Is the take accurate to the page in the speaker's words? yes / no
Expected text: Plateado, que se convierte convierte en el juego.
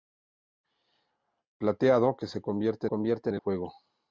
yes